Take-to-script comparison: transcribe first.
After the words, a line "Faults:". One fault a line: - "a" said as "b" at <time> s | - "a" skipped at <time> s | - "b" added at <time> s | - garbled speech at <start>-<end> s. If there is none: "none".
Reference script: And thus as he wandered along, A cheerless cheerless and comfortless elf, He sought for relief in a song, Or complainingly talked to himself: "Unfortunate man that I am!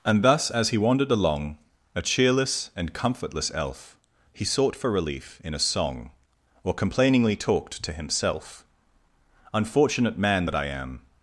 And thus as he wandered along, A cheerless and comfortless elf, He sought for relief in a song, Or complainingly talked to himself: "Unfortunate man that I am!
Faults:
- "cheerless" skipped at 2.7 s